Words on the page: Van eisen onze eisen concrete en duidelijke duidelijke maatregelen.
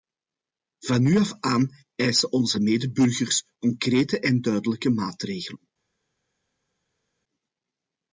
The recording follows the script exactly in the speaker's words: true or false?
false